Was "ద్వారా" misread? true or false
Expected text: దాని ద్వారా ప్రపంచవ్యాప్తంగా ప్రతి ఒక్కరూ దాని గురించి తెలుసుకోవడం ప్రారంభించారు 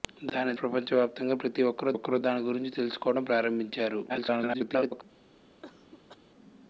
true